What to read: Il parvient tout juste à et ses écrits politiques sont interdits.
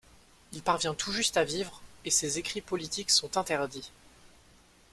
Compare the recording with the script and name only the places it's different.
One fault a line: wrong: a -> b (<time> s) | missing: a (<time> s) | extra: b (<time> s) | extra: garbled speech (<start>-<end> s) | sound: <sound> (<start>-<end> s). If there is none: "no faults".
extra: vivre (1.4 s)